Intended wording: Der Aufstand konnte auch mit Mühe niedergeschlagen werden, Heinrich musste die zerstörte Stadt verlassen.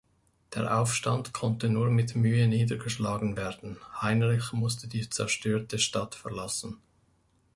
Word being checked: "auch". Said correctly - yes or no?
no